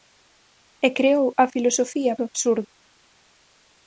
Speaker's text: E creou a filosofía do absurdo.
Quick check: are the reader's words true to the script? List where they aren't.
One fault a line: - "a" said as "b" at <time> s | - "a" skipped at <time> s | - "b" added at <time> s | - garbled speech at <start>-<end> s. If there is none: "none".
none